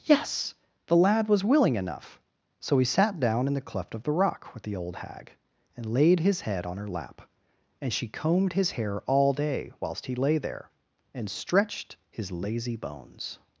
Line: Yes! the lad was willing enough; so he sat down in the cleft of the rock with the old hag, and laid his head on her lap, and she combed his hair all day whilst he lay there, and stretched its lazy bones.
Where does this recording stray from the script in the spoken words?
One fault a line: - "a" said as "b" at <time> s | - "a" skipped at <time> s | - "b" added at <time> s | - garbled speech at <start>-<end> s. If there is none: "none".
- "its" said as "his" at 12.1 s